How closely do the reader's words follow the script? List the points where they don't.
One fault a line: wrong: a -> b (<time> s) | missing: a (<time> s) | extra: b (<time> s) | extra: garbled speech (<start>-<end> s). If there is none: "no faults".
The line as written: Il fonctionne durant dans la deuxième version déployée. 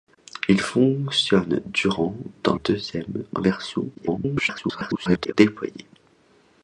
missing: la (2.6 s)
extra: garbled speech (3.9-5.3 s)